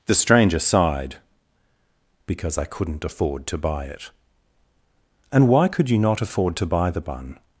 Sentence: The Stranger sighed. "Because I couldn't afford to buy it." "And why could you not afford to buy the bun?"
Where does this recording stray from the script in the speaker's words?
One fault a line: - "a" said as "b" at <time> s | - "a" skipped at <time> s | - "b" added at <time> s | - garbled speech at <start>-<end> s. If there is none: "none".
none